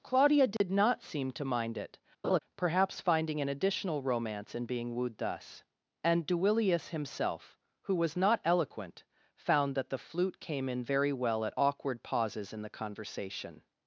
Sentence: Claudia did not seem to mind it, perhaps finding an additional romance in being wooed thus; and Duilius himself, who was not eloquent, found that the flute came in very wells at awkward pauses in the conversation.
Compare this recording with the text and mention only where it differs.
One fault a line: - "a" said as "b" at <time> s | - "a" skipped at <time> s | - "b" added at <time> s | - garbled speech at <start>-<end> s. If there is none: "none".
- "wells" said as "well" at 11.1 s